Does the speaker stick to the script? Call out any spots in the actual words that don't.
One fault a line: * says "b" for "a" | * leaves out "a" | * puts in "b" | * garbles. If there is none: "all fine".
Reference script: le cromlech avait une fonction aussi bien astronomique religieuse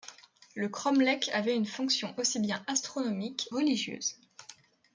all fine